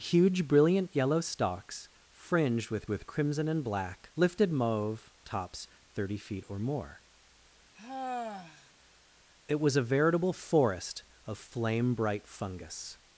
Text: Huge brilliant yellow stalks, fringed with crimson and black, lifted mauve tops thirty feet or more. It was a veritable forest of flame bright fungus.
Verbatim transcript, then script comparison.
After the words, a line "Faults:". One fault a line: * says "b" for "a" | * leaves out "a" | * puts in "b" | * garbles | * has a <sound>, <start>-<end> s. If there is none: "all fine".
Huge brilliant yellow stalks, fringed with with crimson and black, lifted mauve tops thirty feet or more. It was a veritable forest of flame bright fungus.
Faults:
* puts in "with"
* has a sigh, 7.7-8.7 s